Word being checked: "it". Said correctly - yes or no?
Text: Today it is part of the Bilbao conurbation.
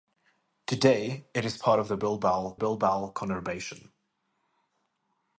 yes